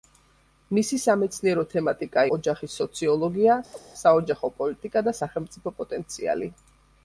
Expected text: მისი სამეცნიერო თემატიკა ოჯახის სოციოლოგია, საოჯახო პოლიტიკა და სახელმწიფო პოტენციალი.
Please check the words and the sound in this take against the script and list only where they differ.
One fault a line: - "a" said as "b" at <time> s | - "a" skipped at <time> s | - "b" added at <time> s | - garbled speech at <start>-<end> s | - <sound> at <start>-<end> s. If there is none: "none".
- chirp at 3.7-3.8 s